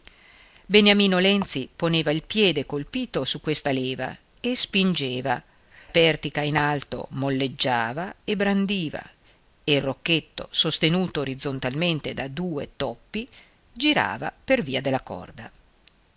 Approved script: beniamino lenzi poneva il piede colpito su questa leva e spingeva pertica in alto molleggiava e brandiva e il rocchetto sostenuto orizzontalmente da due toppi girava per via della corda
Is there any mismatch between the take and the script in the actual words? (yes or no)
no